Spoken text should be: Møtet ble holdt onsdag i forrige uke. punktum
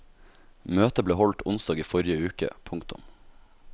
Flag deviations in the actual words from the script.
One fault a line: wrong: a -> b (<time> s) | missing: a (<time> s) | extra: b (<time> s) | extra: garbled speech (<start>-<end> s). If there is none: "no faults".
no faults